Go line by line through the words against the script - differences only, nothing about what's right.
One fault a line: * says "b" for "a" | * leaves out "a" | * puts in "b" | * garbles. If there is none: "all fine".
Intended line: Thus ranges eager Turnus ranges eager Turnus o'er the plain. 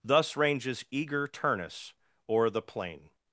* leaves out "ranges eager Turnus"